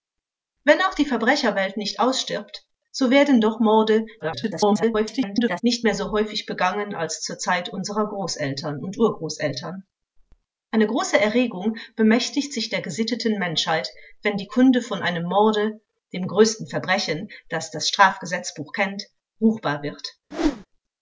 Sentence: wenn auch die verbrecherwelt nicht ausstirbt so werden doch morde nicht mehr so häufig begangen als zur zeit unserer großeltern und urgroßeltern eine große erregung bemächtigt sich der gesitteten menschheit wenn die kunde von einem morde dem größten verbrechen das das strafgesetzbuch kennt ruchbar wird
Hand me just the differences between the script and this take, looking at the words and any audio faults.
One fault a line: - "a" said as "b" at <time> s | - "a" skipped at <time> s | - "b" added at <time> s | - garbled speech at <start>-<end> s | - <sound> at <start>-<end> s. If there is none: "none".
- garbled speech at 4.2-5.6 s
- whoosh at 20.3-20.7 s